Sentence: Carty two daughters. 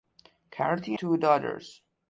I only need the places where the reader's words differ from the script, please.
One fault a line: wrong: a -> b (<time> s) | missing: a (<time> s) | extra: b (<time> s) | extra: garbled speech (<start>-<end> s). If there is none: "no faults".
no faults